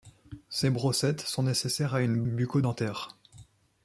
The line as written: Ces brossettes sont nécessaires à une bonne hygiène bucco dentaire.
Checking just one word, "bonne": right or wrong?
wrong